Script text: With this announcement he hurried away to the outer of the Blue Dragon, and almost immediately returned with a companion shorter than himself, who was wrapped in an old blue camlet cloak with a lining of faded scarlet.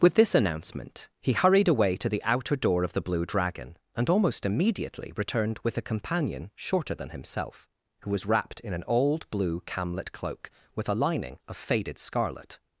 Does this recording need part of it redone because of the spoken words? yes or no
yes